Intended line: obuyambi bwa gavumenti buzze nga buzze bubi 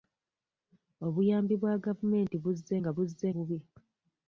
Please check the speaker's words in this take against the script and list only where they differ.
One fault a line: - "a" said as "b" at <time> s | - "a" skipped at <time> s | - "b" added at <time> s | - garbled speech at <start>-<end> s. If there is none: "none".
none